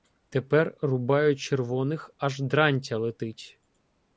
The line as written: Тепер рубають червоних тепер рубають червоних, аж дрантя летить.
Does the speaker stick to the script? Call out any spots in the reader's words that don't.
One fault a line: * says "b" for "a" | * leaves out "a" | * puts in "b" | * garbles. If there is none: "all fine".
* leaves out "тепер рубають червоних"